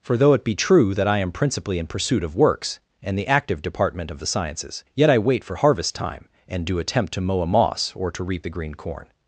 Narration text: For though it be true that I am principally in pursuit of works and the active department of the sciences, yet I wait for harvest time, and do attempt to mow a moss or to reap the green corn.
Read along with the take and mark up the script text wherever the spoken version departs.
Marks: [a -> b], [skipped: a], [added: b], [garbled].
For though it be true that I am principally in pursuit of works and the active department of the sciences, yet I wait for harvest time, and do attempt to mow a moss or to reap the green corn.